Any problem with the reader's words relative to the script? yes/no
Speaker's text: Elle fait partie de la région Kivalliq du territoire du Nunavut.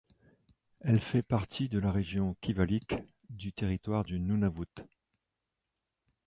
no